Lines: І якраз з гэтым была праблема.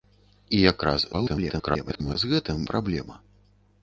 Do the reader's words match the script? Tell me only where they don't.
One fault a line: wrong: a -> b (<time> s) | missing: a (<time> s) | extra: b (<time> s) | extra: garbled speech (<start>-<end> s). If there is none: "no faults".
extra: garbled speech (1.1-2.2 s)
missing: была (2.6 s)